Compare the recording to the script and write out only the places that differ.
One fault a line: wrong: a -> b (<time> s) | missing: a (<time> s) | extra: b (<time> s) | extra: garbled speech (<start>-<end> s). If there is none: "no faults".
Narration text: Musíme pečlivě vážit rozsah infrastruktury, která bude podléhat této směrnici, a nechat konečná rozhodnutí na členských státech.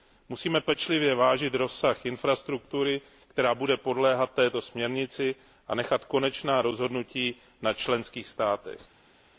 no faults